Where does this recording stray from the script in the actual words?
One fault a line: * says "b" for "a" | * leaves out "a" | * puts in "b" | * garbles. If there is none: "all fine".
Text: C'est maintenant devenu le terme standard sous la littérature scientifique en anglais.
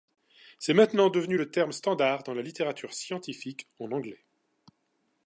* says "dans" for "sous"